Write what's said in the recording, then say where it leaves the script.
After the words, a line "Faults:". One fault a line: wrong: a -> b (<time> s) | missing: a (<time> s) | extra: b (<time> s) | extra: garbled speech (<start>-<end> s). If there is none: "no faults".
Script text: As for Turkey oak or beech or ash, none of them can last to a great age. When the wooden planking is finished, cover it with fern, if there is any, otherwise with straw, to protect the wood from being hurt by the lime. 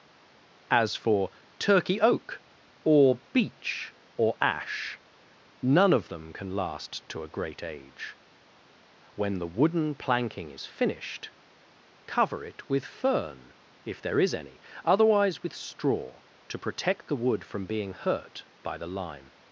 As for Turkey oak or beech or ash, none of them can last to a great age. When the wooden planking is finished, cover it with fern, if there is any, otherwise with straw, to protect the wood from being hurt by the lime.
Faults:
no faults